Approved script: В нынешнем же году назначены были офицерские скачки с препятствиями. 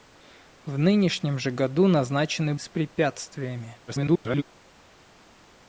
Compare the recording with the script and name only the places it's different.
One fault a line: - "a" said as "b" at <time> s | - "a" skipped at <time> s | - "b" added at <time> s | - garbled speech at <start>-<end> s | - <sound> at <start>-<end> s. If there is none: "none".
- "были офицерские скачки" skipped at 2.5 s
- garbled speech at 3.9-4.4 s